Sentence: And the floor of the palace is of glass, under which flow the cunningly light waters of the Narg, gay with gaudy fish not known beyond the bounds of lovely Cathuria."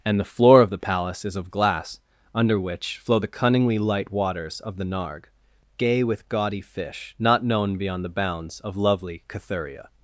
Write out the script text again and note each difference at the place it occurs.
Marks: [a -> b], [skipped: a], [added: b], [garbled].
And the floor of the palace is of glass, under which flow the cunningly light waters of the Narg, gay with gaudy fish not known beyond the bounds of lovely Cathuria."